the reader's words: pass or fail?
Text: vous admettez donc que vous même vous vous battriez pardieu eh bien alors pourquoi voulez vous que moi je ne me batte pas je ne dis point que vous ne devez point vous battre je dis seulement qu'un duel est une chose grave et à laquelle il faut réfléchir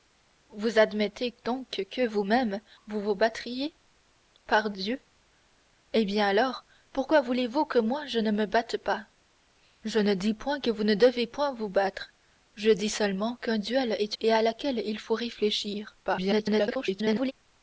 fail